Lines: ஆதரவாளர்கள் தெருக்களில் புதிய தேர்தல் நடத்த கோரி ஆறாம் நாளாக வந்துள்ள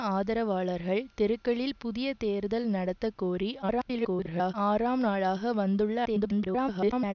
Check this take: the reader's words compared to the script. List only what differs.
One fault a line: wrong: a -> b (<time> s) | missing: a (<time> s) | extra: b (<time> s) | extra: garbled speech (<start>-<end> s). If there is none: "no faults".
extra: garbled speech (3.6-4.5 s)
extra: garbled speech (6.1-7.1 s)